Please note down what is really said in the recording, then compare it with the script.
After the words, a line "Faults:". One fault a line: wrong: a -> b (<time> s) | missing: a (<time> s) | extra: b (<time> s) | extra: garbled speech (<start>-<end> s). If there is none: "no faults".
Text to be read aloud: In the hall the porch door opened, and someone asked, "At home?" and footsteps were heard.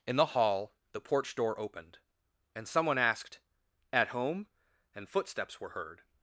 In the hall the porch door opened, and someone asked, "At home?" and footsteps were heard.
Faults:
no faults